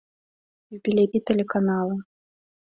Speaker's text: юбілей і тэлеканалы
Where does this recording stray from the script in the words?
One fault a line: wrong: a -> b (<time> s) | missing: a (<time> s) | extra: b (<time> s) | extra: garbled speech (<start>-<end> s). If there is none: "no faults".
no faults